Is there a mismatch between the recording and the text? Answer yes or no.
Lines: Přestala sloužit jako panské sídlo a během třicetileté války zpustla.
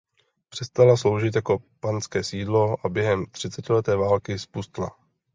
no